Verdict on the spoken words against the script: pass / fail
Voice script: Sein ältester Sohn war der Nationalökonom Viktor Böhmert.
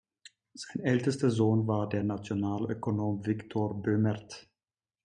pass